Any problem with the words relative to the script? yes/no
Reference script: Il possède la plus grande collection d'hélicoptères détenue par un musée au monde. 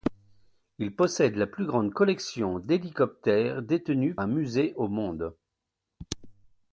yes